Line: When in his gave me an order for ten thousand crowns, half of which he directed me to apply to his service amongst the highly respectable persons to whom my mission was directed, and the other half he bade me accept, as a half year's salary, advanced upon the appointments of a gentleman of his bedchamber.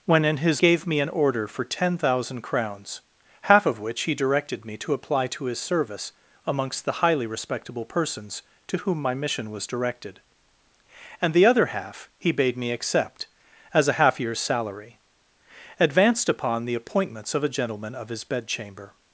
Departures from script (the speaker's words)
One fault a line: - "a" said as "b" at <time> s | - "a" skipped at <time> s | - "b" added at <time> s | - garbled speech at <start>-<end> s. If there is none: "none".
none